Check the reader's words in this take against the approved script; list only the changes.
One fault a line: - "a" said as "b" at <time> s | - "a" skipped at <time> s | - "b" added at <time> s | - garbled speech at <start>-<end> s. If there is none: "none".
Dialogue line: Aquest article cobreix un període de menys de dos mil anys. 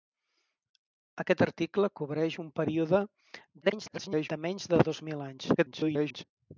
- garbled speech at 3.6-4.3 s
- garbled speech at 5.6-6.2 s